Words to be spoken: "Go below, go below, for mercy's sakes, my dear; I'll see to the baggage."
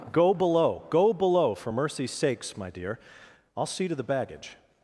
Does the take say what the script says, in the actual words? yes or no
yes